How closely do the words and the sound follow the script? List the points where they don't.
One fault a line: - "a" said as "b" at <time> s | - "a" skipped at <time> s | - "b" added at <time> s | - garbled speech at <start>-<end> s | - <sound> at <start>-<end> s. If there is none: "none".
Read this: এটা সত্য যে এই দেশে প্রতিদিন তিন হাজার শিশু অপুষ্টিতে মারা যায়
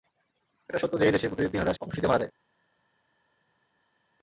- "শিশু" skipped at 1.8 s